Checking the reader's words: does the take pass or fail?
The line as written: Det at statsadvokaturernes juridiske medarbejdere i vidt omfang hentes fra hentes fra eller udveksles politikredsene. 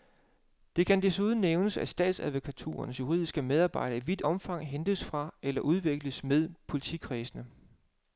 fail